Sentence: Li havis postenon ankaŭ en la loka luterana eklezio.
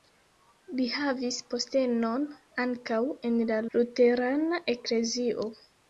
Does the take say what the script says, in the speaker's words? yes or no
no